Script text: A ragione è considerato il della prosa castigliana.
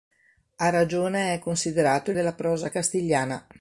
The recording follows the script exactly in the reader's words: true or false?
true